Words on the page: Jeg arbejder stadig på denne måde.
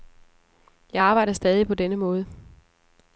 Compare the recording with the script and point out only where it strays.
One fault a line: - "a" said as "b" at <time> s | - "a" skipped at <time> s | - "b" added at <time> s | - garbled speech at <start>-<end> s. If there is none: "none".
none